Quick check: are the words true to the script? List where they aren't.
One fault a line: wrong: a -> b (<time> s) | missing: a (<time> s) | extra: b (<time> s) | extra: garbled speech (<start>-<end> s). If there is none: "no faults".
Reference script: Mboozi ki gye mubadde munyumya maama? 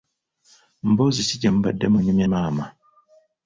no faults